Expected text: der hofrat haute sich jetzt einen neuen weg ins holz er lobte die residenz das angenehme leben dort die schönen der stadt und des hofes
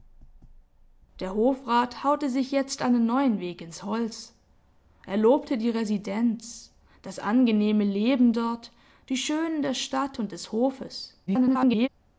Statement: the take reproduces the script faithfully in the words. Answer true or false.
false